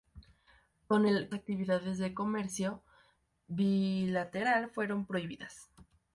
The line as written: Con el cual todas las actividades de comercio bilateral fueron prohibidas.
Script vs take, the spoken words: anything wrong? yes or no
yes